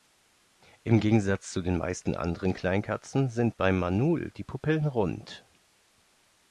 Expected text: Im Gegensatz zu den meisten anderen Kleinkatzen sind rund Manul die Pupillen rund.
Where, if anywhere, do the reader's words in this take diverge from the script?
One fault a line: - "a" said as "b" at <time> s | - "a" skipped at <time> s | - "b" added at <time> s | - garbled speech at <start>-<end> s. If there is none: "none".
- "rund" said as "beim" at 3.6 s